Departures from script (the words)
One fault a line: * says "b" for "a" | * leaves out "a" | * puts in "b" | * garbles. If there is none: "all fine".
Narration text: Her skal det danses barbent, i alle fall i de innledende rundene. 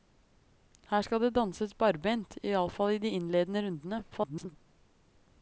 * garbles